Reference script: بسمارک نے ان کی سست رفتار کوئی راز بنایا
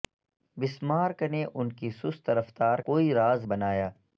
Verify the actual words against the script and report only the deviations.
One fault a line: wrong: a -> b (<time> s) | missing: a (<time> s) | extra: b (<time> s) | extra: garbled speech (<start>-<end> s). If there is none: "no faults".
no faults